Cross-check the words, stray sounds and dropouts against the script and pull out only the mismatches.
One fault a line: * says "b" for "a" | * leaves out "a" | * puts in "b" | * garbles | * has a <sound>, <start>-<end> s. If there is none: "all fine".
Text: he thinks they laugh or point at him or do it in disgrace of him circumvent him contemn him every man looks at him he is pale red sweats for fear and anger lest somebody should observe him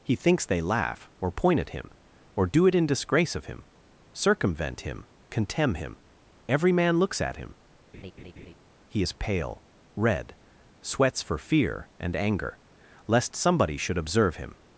* has a laugh, 7.9-8.5 s